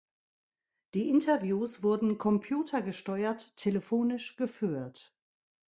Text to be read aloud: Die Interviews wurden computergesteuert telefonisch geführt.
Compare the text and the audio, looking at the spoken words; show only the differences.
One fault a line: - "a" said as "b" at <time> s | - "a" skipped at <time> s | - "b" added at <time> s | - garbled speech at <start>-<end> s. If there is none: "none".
none